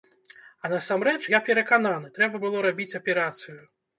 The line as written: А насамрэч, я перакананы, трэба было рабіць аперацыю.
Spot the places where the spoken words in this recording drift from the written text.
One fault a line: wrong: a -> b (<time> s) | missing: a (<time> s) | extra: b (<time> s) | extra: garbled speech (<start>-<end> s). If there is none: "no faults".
no faults